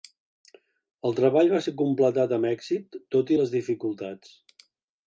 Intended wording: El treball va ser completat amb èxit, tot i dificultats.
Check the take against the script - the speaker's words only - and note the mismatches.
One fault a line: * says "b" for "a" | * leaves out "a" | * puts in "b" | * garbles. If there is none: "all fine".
* puts in "les"